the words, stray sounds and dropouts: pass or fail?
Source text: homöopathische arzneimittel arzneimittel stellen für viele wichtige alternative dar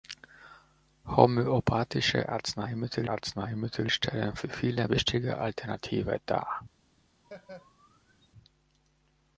fail